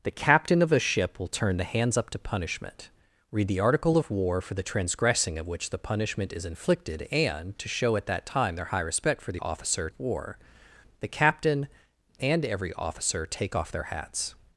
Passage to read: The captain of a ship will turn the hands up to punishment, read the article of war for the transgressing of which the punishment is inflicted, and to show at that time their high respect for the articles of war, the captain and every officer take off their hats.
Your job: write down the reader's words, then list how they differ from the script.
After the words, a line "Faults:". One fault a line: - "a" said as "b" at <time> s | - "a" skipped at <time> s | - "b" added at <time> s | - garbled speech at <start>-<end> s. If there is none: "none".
The captain of a ship will turn the hands up to punishment, read the article of war for the transgressing of which the punishment is inflicted, and to show at that time their high respect for the officer of war, the captain and every officer take off their hats.
Faults:
- "articles" said as "officer" at 9.4 s